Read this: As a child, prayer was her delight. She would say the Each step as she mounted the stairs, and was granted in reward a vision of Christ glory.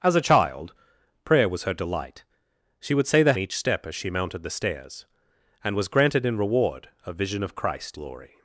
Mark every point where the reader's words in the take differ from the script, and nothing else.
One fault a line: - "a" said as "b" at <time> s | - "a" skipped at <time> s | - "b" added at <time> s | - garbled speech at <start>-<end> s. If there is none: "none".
none